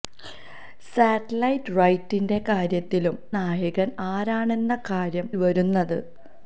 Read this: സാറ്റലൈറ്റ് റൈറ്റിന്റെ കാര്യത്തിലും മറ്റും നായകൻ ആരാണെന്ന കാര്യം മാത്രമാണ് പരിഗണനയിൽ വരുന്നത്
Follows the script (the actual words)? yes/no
no